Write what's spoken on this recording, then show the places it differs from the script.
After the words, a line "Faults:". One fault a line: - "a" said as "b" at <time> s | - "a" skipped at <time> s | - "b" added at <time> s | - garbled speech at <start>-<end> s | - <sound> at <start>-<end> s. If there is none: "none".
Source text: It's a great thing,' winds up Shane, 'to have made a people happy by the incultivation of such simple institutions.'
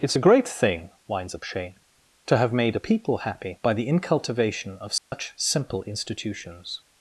It's a great thing,' winds up Shane, 'to have made a people happy by the incultivation of such simple institutions.'
Faults:
- dropout at 5.0-5.1 s